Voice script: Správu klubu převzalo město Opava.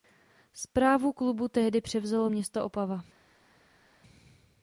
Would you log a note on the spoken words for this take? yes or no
yes